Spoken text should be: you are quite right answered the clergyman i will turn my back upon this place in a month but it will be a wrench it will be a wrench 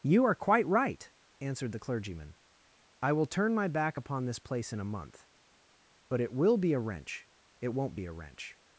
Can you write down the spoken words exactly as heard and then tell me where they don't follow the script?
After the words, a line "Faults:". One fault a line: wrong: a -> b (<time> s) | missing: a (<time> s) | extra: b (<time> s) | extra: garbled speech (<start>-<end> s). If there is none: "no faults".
you are quite right answered the clergyman i will turn my back upon this place in a month but it will be a wrench it won't be a wrench
Faults:
wrong: will -> won't (7.7 s)